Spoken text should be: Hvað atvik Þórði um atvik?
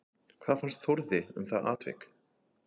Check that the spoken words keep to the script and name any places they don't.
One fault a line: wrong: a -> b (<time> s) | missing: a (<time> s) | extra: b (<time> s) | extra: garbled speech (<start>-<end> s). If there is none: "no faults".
wrong: atvik -> fannst (0.6 s)
extra: það (1.5 s)